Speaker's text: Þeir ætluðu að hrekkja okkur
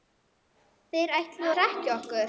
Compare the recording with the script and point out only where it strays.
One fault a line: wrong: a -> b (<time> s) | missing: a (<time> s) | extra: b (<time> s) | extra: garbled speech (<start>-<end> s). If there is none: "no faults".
missing: að (1.5 s)